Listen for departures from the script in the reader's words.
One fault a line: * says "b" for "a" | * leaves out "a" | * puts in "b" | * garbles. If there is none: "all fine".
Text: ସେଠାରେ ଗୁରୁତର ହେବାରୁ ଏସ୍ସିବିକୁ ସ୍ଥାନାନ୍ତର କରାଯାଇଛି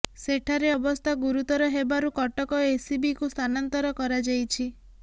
* puts in "ଅବସ୍ଥା"
* puts in "କଟକ"